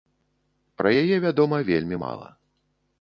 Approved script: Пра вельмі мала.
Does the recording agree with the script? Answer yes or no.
no